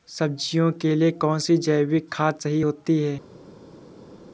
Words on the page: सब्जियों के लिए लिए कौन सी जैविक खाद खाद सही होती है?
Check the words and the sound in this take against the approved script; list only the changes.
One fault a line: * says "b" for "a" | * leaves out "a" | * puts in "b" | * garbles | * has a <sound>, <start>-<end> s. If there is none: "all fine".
* leaves out "लिए"
* leaves out "खाद"